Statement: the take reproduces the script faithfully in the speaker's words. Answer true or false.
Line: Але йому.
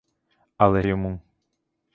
true